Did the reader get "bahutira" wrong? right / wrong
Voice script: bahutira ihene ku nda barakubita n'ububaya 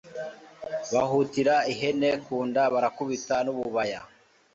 right